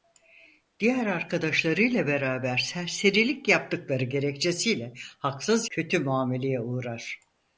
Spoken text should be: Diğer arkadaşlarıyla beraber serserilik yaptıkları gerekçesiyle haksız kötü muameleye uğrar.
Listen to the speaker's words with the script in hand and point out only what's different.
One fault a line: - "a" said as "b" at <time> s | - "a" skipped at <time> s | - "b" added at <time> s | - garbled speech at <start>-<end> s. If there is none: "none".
none